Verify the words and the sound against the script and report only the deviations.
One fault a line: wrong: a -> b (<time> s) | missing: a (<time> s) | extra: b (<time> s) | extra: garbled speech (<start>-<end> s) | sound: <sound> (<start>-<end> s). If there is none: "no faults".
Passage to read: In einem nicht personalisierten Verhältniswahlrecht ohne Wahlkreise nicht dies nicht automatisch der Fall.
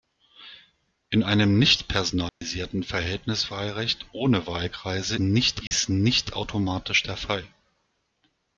sound: dropout (2.3-2.4 s)
sound: dropout (5.7-5.7 s)